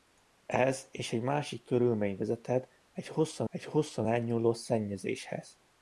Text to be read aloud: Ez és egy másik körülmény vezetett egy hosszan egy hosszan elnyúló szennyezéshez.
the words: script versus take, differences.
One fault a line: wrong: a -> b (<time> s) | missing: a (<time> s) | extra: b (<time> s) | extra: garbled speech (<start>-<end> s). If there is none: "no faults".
no faults